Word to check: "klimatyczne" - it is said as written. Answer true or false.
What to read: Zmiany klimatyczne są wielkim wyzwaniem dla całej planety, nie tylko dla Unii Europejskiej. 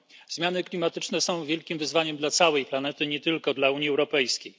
true